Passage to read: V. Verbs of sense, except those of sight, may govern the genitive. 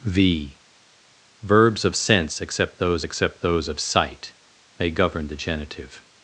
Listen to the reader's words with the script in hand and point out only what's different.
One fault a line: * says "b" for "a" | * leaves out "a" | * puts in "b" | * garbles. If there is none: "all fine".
* puts in "except those"